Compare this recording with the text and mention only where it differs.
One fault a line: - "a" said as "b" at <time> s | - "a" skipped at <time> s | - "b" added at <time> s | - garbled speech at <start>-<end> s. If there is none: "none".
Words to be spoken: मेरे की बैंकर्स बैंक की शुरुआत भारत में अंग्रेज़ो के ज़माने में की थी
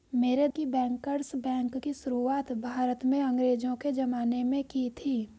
none